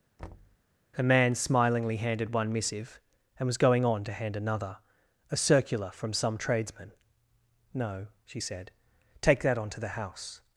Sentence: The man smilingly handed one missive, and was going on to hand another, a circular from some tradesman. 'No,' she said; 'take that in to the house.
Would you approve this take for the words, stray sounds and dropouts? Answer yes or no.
no